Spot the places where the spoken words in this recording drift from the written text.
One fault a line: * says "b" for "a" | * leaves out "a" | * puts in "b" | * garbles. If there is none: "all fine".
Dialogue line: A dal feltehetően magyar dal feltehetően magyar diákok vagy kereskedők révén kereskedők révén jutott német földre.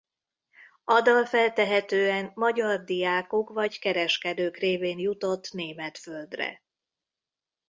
* leaves out "dal feltehetően magyar"
* leaves out "kereskedők révén"